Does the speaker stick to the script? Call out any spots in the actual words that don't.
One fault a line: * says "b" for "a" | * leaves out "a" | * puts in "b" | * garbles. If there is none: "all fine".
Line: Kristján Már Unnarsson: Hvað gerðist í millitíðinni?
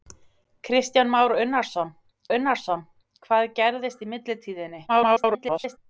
* puts in "Unnarsson"
* garbles